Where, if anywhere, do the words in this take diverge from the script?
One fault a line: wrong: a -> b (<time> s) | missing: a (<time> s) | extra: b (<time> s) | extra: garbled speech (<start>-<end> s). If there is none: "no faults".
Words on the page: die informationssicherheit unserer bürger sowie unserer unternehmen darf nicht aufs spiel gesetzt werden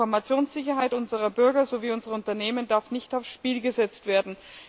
no faults